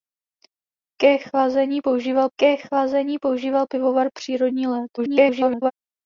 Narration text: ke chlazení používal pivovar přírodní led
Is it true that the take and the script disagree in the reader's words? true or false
true